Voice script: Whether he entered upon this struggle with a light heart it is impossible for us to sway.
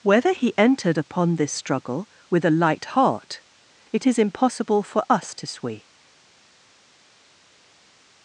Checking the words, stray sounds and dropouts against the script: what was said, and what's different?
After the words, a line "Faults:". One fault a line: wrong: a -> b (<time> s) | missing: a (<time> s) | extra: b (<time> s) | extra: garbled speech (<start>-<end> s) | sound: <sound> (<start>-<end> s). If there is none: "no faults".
Whether he entered upon this struggle with a light heart it is impossible for us to sway.
Faults:
no faults